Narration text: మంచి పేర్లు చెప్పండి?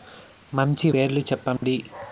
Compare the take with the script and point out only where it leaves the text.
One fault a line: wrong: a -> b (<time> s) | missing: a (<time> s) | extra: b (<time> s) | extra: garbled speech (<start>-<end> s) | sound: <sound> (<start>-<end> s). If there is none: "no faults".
sound: dropout (1.6-1.6 s)